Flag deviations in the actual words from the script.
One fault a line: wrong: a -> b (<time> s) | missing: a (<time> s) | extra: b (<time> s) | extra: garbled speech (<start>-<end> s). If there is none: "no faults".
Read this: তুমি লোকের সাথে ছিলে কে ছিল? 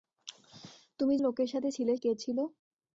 no faults